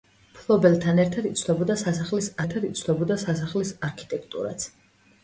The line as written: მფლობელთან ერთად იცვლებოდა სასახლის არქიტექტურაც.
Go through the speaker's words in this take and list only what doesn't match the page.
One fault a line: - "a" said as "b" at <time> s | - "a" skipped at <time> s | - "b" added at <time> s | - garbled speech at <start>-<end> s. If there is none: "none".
- "ერთად იცვლებოდა სასახლის" added at 2.4 s